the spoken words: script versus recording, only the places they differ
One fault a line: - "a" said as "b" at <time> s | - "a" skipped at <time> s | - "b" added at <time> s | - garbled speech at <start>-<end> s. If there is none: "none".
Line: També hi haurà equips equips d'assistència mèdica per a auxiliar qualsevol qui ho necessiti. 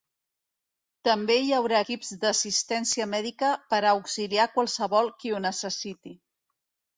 - "equips" skipped at 2.1 s